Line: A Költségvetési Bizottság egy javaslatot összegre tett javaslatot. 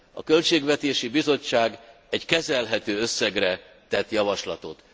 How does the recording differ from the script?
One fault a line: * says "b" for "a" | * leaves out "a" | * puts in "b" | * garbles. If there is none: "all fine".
* says "kezelhető" for "javaslatot"